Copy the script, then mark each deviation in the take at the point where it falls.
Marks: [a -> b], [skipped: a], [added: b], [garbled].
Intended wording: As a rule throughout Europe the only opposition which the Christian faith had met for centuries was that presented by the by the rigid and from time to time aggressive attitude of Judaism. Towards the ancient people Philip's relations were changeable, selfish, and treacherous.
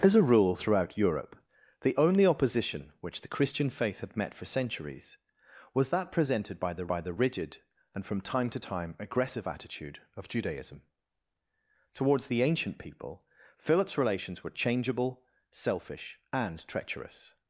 As a rule throughout Europe the only opposition which the Christian faith had met for centuries was that presented by the by the rigid and from time to time aggressive attitude of Judaism. Towards the ancient people Philip's relations were changeable, selfish, and treacherous.